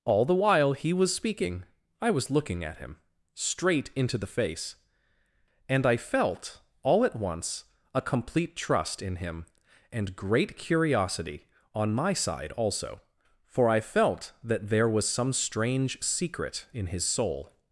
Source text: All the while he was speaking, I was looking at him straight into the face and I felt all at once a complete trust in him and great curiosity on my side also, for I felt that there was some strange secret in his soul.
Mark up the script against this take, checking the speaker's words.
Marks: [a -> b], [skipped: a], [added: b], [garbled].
All the while he was speaking, I was looking at him straight into the face and I felt all at once a complete trust in him and great curiosity on my side also, for I felt that there was some strange secret in his soul.